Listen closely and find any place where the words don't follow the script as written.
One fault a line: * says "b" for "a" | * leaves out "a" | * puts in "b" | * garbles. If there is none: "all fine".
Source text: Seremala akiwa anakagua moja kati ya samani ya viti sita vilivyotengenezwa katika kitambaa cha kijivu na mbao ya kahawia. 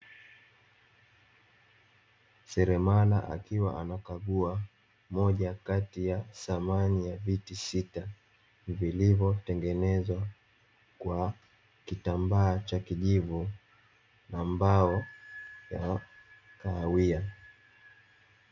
* says "kwa" for "katika"